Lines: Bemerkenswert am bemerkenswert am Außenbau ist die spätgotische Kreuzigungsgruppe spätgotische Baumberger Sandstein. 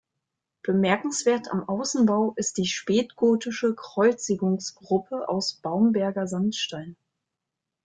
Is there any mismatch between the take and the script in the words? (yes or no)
yes